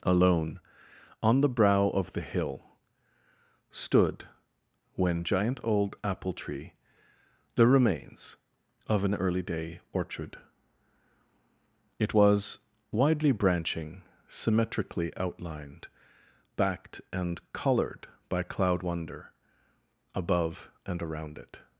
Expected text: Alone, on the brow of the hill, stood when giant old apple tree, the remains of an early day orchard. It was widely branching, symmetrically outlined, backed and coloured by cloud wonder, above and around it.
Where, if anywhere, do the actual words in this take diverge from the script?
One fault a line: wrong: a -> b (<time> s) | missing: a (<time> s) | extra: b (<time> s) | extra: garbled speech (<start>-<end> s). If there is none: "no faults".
no faults